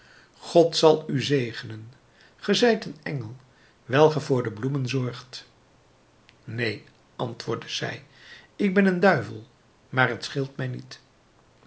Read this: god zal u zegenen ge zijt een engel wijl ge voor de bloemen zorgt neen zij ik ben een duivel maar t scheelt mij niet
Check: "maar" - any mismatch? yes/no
no